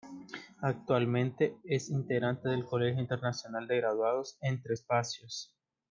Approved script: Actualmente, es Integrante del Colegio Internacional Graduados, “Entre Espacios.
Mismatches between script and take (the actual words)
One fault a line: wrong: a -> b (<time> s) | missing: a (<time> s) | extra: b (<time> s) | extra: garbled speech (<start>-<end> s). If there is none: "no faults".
extra: de (3.7 s)